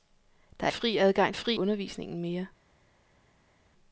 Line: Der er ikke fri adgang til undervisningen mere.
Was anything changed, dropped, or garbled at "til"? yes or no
yes